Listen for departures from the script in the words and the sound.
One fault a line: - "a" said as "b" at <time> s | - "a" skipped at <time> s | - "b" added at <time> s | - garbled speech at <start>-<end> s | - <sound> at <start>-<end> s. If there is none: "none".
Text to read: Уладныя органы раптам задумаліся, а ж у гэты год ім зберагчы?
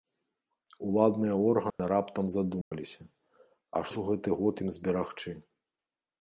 - dropout at 1.7-1.8 s
- dropout at 2.6-2.7 s